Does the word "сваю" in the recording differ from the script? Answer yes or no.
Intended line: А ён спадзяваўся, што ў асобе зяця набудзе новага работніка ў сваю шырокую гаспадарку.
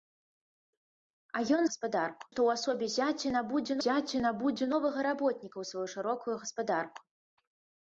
no